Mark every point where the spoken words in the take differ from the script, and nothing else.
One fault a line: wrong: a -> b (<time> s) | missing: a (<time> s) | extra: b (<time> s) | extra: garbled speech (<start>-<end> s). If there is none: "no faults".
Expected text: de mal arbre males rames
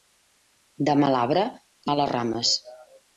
no faults